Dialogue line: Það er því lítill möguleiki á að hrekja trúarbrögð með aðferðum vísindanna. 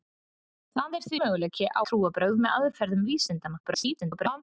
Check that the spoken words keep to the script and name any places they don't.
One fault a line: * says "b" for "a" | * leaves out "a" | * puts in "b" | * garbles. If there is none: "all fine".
* leaves out "lítill"
* leaves out "að hrekja"
* garbles